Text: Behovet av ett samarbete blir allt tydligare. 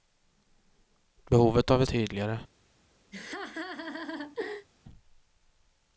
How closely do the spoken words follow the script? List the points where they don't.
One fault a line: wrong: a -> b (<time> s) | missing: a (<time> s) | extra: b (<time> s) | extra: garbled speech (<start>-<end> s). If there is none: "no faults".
missing: samarbete blir allt (1.9 s)